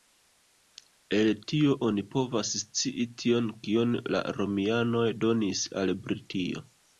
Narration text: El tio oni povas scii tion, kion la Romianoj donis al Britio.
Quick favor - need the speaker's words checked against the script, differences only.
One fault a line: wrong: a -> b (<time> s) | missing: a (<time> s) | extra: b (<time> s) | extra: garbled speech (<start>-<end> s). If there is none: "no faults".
no faults